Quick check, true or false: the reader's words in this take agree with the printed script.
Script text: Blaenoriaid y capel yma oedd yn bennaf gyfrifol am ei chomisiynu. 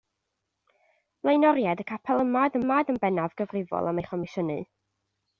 false